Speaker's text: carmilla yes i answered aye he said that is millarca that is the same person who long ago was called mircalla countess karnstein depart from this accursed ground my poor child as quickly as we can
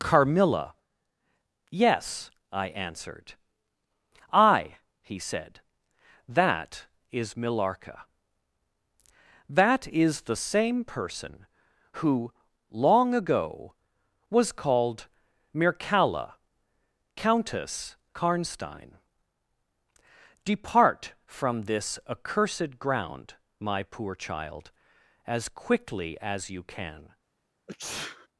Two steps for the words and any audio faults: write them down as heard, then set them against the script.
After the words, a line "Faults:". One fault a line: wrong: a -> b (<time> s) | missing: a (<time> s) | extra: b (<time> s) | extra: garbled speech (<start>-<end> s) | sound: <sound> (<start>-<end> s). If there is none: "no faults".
carmilla yes i answered aye he said that is millarca that is the same person who long ago was called mircalla countess karnstein depart from this accursed ground my poor child as quickly as you can
Faults:
wrong: we -> you (26.5 s)
sound: sneeze (27.7-28.3 s)